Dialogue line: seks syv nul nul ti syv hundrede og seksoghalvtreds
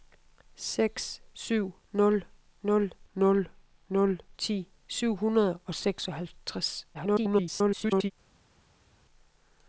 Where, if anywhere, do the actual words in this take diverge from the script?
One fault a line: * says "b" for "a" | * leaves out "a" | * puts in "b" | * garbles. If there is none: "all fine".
* puts in "nul nul"
* garbles